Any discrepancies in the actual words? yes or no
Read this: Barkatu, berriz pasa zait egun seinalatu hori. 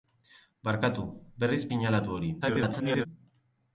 yes